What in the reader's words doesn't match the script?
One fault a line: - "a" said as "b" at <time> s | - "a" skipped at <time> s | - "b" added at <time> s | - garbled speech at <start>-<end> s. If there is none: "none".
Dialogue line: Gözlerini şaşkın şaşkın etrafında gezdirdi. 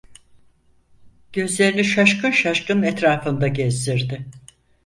none